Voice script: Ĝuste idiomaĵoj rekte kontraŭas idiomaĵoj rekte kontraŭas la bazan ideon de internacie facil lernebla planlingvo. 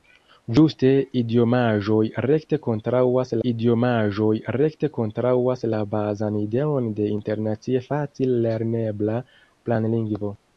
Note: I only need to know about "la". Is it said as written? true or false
true